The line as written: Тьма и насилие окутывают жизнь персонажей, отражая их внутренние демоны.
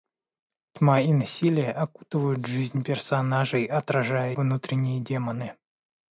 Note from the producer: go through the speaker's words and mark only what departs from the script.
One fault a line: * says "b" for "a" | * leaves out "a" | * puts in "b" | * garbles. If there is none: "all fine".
* leaves out "их"